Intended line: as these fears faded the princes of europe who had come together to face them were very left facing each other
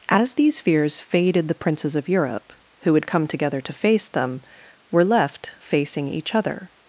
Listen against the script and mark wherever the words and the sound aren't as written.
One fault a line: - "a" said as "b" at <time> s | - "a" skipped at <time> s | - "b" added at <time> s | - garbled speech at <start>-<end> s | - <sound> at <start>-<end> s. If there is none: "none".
- "very" skipped at 5.1 s